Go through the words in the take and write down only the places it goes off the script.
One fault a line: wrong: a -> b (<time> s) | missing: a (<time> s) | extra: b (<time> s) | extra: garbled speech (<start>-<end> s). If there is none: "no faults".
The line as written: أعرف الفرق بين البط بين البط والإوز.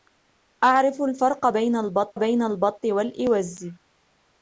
no faults